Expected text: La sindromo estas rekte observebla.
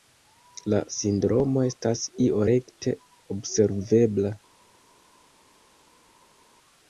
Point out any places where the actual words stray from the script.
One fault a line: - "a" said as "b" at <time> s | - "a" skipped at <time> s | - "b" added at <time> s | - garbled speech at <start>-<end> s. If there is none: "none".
- "io" added at 2.3 s